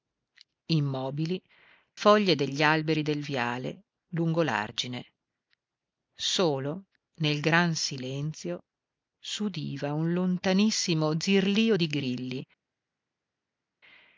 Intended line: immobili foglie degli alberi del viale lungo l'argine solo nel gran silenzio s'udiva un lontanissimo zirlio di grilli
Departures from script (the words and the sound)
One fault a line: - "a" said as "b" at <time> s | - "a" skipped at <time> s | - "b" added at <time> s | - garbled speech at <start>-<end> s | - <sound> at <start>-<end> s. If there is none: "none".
none